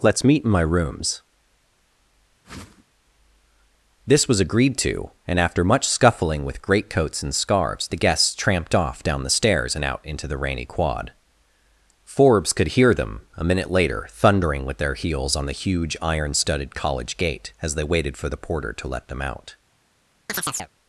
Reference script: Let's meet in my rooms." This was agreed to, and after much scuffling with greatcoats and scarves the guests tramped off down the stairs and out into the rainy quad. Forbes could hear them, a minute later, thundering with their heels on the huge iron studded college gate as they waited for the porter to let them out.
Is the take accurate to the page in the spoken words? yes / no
yes